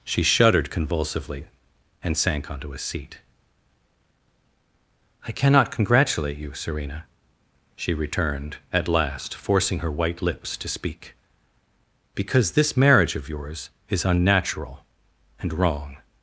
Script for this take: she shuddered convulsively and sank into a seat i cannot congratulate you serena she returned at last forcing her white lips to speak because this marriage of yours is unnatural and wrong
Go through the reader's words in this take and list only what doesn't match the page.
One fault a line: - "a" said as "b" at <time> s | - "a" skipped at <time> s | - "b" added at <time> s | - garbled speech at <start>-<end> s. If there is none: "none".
- "into" said as "onto" at 2.5 s